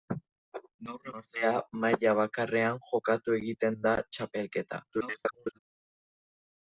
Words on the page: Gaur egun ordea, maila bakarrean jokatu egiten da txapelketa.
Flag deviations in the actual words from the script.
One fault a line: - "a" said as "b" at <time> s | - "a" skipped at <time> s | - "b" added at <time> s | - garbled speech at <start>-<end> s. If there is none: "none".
- "egun" skipped at 1.1 s
- garbled speech at 4.9-5.6 s